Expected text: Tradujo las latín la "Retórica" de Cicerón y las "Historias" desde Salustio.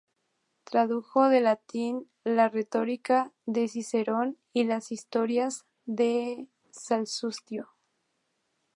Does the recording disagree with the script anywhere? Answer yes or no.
yes